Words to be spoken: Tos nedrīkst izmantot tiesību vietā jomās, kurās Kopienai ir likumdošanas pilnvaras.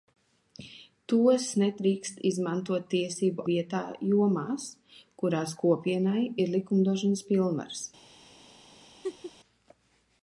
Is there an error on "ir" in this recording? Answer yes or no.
no